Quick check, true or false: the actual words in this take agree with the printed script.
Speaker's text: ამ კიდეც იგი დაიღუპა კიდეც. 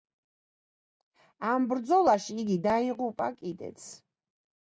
false